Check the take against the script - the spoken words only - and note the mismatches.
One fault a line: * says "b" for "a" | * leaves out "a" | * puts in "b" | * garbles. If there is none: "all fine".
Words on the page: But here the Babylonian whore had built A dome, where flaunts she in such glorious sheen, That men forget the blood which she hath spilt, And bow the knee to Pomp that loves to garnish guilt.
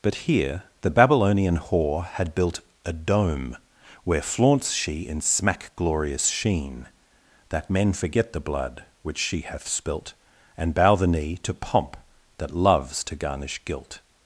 * says "smack" for "such"